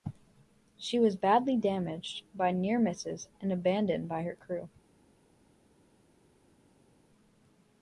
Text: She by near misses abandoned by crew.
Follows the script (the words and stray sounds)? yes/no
no